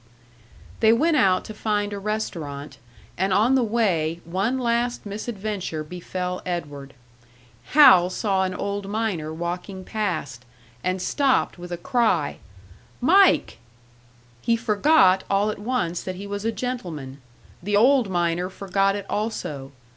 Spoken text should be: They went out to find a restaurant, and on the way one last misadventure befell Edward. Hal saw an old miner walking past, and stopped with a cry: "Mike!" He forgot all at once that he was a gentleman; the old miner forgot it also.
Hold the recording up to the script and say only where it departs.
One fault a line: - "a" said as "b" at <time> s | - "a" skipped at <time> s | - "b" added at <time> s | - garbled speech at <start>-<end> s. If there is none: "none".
none